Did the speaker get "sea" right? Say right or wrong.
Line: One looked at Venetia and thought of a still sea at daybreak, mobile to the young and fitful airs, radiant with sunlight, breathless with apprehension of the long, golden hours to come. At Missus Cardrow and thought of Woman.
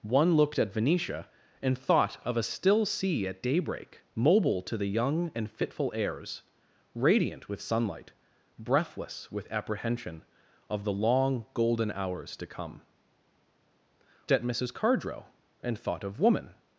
right